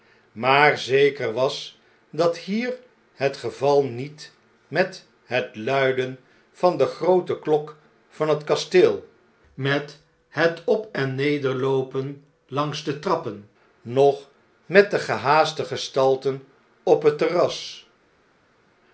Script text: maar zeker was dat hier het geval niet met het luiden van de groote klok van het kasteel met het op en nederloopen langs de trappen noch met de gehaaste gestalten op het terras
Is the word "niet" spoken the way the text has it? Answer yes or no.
yes